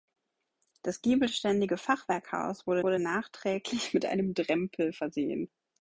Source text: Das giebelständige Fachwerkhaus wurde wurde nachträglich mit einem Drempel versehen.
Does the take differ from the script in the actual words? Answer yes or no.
no